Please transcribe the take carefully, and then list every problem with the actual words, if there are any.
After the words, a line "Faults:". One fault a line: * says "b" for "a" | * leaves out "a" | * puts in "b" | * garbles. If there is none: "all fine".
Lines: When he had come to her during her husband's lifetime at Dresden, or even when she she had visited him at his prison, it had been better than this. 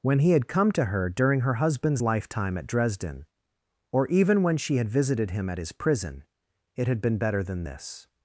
When he had come to her during her husband's lifetime at Dresden, or even when she had visited him at his prison, it had been better than this.
Faults:
* leaves out "she"